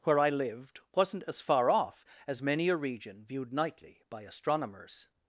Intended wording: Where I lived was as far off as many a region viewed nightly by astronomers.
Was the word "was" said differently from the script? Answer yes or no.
yes